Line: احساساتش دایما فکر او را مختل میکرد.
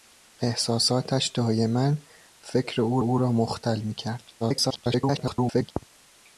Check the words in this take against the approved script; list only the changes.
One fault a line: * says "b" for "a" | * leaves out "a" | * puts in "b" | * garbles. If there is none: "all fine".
* puts in "او"
* garbles